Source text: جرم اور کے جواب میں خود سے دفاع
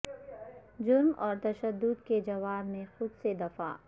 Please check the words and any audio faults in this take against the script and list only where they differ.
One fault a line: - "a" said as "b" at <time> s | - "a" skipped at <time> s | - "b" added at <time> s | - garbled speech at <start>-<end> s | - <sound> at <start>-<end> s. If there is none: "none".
- "تشدد" added at 1.4 s